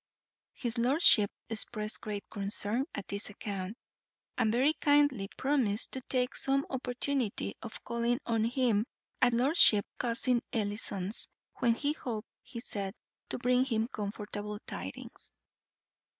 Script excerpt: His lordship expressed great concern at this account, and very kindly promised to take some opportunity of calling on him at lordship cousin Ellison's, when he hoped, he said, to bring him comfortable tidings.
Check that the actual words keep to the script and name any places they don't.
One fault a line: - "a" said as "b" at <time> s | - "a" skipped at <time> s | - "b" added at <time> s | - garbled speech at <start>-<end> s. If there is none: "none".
none